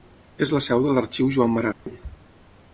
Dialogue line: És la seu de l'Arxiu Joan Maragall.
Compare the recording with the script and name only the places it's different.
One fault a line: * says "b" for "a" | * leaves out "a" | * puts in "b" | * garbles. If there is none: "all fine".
all fine